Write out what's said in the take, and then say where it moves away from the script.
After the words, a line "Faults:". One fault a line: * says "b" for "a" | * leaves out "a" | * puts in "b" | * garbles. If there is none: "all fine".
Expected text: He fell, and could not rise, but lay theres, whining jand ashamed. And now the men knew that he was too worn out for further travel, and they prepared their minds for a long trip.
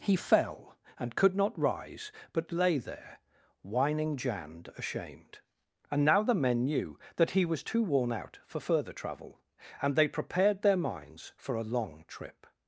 He fell, and could not rise, but lay there, whining jand ashamed. And now the men knew that he was too worn out for further travel, and they prepared their minds for a long trip.
Faults:
* says "there" for "theres"